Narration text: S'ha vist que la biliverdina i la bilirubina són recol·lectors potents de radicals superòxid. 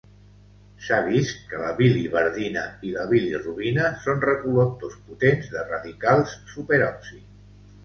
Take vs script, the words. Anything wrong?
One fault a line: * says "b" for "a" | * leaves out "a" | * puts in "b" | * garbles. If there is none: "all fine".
all fine